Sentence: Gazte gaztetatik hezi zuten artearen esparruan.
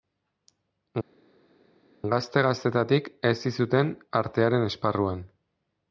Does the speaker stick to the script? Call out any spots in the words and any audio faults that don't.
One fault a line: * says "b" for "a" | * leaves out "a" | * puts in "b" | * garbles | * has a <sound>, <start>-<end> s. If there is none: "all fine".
all fine